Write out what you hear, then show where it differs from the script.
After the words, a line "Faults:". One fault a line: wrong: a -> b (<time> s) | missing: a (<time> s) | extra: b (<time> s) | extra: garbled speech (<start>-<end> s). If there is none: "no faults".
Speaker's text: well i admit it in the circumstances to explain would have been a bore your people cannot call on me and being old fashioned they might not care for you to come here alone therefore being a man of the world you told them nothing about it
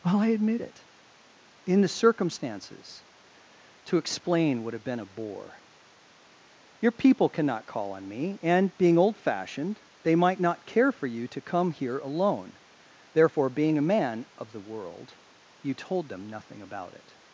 well i admit it in the circumstances to explain would have been a bore your people cannot call on me and being old fashioned they might not care for you to come here alone therefore being a man of the world you told them nothing about it
Faults:
no faults